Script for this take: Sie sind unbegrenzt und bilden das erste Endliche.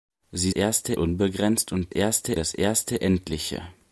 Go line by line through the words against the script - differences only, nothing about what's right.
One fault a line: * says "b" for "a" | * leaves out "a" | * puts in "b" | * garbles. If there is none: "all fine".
* says "erste" for "sind"
* says "erste" for "bilden"